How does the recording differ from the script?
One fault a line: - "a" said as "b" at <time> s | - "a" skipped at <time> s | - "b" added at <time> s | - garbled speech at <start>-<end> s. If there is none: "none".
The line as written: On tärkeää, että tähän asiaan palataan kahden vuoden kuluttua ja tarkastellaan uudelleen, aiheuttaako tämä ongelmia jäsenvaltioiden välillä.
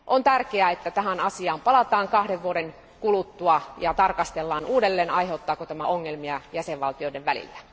none